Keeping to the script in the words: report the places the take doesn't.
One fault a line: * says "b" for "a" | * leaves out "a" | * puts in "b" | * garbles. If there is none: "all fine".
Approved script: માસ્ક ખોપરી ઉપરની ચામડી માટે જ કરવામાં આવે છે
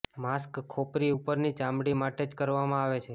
all fine